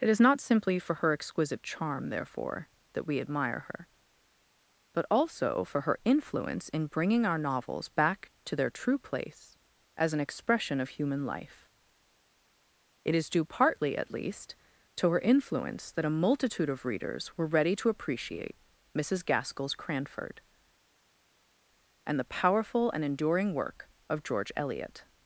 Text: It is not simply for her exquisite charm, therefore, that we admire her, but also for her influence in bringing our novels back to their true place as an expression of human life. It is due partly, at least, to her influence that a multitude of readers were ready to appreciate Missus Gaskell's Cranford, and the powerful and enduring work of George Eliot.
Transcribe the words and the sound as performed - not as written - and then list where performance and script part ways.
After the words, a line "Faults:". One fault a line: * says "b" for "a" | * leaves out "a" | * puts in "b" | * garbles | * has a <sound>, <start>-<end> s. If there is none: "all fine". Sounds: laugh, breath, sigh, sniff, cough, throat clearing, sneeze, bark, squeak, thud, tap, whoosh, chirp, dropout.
It is not simply for her exquisite charm, therefore, that we admire her, but also for her influence in bringing our novels back to their true place as an expression of human life. It is due partly, at least, to her influence that a multitude of readers were ready to appreciate Missus Gaskell's Cranford, and the powerful and enduring work of George Eliot.
Faults:
all fine